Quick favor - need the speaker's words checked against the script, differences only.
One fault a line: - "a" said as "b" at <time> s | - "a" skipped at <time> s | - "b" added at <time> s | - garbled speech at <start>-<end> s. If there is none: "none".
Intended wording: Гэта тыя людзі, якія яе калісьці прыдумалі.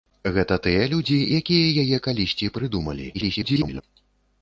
- garbled speech at 3.1-3.8 s